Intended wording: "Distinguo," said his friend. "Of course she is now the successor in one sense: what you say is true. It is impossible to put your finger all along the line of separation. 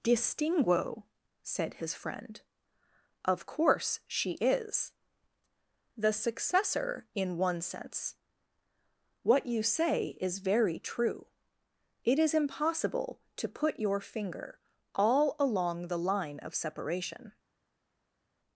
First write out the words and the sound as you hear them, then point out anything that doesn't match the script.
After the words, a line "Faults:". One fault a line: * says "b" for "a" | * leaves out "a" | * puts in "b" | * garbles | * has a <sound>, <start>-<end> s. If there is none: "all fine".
"Distinguo," said his friend. "Of course she is the successor in one sense: what you say is very true. It is impossible to put your finger all along the line of separation.
Faults:
* leaves out "now"
* puts in "very"